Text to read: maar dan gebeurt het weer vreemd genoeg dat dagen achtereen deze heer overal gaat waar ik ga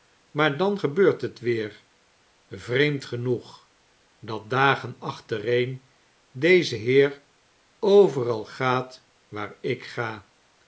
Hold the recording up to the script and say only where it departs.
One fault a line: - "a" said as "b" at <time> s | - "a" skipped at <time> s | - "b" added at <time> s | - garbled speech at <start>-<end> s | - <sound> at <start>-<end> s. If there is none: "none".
none